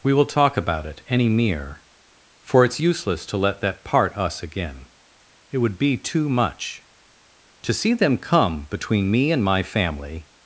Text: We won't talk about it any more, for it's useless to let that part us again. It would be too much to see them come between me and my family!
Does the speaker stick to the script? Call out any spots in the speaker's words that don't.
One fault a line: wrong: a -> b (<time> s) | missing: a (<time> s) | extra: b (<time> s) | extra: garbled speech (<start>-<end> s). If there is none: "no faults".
wrong: won't -> will (0.1 s)
wrong: more -> mere (1.3 s)